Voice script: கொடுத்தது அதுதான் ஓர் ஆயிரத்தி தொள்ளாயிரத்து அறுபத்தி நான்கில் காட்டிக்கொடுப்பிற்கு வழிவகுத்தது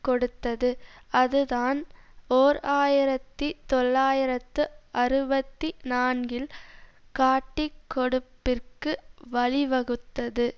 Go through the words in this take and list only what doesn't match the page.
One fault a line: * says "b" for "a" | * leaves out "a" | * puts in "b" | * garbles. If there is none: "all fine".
all fine